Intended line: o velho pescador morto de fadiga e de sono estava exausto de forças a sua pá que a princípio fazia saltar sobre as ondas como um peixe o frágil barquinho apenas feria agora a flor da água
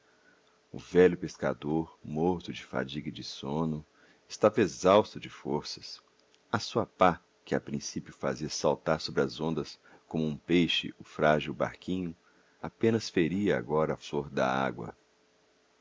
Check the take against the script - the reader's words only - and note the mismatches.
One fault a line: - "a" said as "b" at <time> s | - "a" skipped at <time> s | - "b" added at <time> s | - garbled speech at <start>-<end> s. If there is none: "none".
none